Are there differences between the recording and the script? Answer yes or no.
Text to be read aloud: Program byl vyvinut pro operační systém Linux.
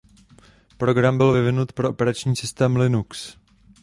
no